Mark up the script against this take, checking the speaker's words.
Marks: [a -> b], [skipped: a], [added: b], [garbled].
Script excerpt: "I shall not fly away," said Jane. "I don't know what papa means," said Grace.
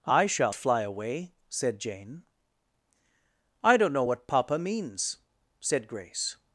"I shall [skipped: not] fly away," said Jane. "I don't know what papa means," said Grace.